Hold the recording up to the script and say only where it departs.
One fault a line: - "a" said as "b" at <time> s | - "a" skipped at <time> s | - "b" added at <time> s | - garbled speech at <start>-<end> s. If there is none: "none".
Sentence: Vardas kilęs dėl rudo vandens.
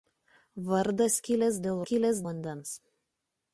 - "rudo" said as "kilęs" at 1.9 s